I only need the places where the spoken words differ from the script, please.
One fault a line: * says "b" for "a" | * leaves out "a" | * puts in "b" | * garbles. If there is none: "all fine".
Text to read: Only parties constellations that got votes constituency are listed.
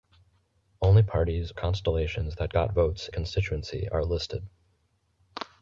all fine